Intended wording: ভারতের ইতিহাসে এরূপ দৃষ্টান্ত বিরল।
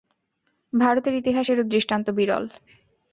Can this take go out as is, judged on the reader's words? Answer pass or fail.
pass